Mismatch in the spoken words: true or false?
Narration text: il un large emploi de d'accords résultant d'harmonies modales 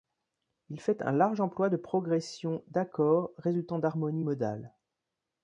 true